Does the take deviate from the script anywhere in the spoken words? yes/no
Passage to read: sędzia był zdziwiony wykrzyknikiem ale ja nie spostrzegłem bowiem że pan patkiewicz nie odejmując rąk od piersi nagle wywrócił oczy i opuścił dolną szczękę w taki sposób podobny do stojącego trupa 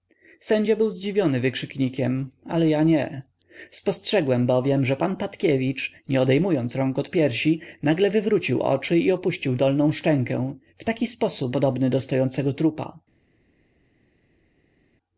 no